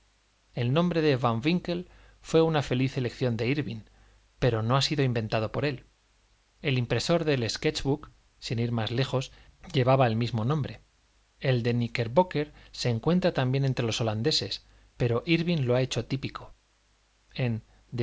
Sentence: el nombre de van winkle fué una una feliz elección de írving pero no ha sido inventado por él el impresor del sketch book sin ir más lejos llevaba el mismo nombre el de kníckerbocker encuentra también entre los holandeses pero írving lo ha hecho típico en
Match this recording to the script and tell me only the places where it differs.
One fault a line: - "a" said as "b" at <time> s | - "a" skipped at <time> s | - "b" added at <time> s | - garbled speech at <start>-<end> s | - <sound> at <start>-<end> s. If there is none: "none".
- "una" skipped at 2.6 s
- "se" added at 12.7 s